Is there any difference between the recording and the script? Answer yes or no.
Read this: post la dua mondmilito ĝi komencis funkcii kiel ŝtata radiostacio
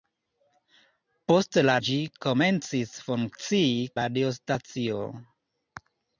yes